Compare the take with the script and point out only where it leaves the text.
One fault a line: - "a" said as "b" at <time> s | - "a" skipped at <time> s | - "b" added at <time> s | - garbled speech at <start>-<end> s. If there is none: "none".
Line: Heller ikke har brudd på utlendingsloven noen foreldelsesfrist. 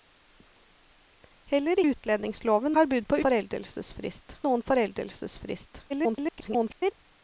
- "ikke" said as "utlendingsloven" at 1.9 s
- "utlendingsloven" said as "foreldelsesfrist" at 3.3 s
- garbled speech at 5.9-6.9 s